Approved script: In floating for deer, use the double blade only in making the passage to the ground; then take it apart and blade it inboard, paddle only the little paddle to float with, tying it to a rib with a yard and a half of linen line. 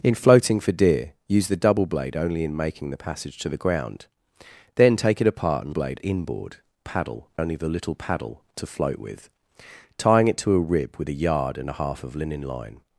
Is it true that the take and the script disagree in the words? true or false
false